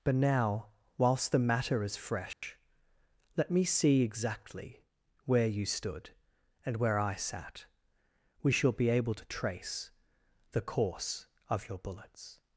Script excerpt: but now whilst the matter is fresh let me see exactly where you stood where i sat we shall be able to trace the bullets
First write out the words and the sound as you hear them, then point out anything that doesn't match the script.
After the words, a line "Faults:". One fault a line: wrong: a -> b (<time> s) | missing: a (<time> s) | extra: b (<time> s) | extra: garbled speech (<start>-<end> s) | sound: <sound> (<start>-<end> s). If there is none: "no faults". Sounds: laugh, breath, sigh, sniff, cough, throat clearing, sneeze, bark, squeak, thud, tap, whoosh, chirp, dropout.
but now whilst the matter is fresh let me see exactly where you stood and where i sat we shall be able to trace the course of your bullets
Faults:
sound: dropout (2.3-2.4 s)
extra: and (6.6 s)
extra: course of your (10.6 s)